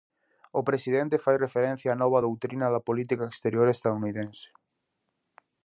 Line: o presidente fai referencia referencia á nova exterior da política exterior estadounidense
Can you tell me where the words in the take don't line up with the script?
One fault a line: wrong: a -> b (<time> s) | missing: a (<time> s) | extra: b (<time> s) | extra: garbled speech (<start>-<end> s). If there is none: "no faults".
missing: referencia (1.9 s)
wrong: exterior -> doutrina (2.2 s)